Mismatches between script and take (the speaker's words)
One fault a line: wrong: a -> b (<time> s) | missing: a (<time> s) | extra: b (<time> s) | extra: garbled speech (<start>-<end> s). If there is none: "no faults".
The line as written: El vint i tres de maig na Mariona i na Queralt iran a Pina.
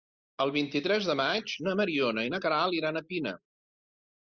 no faults